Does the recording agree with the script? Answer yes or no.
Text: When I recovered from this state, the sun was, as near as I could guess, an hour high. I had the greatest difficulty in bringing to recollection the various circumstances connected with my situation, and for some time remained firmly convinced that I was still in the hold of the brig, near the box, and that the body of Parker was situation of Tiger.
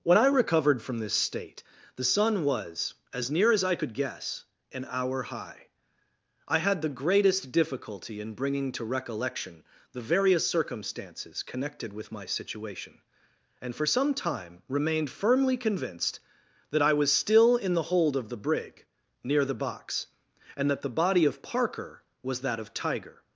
no